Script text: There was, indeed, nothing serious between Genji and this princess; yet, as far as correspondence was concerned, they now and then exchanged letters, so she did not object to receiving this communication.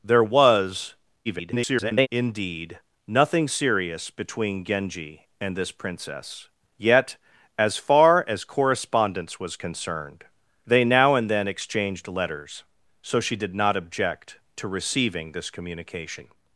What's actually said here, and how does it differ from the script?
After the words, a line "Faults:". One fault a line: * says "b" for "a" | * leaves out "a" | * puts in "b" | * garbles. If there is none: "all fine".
There was, [garbled] indeed, nothing serious between Genji and this princess; yet, as far as correspondence was concerned, they now and then exchanged letters, so she did not object to receiving this communication.
Faults:
* garbles